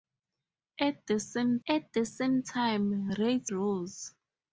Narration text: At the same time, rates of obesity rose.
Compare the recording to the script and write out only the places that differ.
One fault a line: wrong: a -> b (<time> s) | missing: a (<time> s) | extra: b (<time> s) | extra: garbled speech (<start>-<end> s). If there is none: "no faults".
extra: at the same (1.7 s)
missing: of obesity (3.5 s)